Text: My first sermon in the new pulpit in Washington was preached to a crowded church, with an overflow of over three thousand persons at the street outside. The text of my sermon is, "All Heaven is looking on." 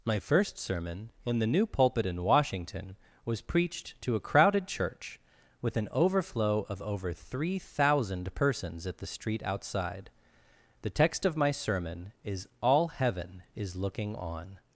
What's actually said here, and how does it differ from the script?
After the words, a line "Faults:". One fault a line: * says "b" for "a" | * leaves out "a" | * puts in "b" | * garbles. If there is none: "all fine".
My first sermon in the new pulpit in Washington was preached to a crowded church, with an overflow of over three thousand persons at the street outside. The text of my sermon is, "All Heaven is looking on."
Faults:
all fine